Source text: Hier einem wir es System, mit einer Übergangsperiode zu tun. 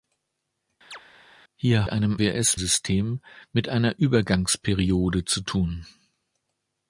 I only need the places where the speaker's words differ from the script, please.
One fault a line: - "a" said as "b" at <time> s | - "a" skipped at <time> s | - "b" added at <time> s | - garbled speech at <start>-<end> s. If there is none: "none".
none